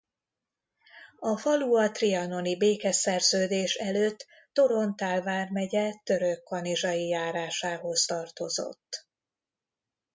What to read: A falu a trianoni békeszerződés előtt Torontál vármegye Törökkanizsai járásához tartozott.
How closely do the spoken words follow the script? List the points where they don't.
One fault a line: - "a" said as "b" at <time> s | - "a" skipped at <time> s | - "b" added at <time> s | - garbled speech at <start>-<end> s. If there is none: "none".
none